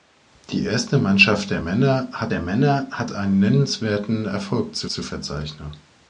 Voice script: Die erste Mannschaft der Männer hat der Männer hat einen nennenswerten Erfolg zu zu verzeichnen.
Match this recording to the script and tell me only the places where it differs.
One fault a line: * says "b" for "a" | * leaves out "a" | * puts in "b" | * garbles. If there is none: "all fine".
all fine